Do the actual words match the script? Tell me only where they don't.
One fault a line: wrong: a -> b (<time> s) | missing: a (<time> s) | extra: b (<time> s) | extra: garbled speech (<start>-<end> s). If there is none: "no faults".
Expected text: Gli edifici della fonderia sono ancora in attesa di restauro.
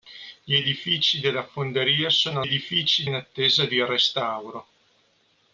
wrong: ancora -> edifici (2.4 s)